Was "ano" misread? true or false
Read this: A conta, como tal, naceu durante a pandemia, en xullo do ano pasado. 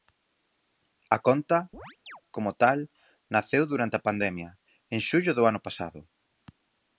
false